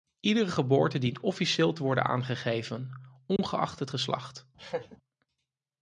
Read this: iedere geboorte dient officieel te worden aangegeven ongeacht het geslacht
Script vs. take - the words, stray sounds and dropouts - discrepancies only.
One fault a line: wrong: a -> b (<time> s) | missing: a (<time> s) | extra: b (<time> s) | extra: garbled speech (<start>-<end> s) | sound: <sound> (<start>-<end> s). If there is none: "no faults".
sound: dropout (3.4-3.4 s)
sound: laugh (4.6-5.0 s)